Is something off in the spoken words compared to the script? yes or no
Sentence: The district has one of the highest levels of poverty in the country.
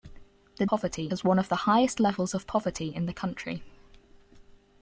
yes